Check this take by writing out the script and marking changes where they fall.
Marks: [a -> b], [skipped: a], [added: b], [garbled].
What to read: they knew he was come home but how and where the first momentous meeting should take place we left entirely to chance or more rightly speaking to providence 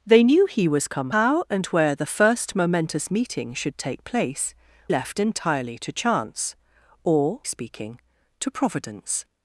they knew he was come [skipped: home but] how and where the first momentous meeting should take place [skipped: we] left entirely to chance or [skipped: more rightly] speaking to providence